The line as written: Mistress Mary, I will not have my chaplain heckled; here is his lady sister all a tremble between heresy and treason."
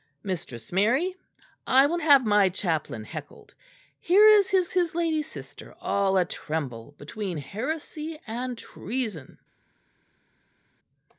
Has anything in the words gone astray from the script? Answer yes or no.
yes